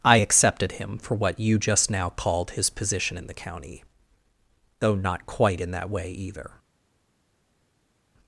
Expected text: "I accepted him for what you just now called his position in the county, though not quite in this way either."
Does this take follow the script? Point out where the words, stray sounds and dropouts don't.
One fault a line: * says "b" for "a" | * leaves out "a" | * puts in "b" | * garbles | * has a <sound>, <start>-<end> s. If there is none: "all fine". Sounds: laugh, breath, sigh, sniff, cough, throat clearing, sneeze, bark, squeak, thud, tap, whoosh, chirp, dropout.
* says "that" for "this"